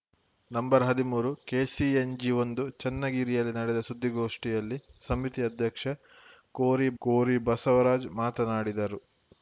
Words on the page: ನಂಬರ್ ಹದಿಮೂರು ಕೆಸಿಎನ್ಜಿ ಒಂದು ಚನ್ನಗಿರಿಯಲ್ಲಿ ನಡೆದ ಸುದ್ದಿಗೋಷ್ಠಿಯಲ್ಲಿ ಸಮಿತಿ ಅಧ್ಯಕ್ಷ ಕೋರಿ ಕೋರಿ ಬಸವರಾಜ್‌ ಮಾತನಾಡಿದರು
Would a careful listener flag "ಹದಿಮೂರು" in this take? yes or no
no